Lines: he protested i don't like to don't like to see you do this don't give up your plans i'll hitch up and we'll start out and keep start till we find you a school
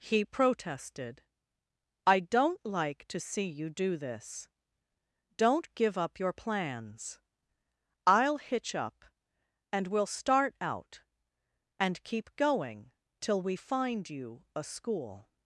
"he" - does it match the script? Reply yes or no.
yes